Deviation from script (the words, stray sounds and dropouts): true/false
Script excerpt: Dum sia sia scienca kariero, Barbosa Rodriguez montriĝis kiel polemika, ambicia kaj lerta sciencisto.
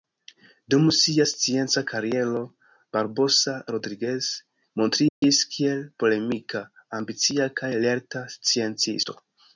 true